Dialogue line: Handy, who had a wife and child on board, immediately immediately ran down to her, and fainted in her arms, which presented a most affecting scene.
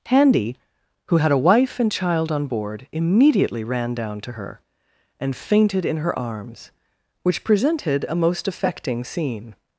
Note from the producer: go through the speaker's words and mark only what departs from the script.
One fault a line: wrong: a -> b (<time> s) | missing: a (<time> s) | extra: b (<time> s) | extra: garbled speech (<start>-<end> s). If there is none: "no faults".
missing: immediately (3.6 s)